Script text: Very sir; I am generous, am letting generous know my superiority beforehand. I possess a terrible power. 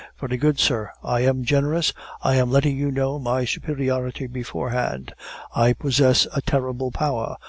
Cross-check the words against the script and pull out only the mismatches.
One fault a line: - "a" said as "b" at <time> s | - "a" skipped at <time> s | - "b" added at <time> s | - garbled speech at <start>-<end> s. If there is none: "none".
- "good" added at 0.4 s
- "I" added at 2.2 s
- "generous" said as "you" at 2.8 s